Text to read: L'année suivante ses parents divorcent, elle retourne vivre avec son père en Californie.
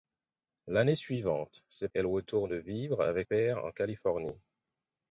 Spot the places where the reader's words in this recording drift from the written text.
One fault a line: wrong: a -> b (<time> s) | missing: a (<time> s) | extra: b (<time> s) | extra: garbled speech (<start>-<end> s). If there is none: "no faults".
missing: parents divorcent (1.9 s)
missing: son (3.3 s)